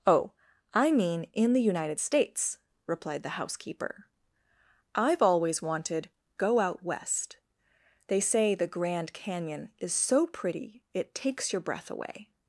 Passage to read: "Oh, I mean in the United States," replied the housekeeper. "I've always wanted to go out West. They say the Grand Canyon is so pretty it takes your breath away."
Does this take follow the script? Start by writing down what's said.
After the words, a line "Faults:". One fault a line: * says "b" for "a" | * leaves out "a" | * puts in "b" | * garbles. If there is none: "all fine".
"Oh, I mean in the United States," replied the housekeeper. "I've always wanted go out West. They say the Grand Canyon is so pretty it takes your breath away."
Faults:
* leaves out "to"